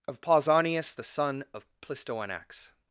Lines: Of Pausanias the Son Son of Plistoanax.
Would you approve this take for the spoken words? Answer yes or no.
no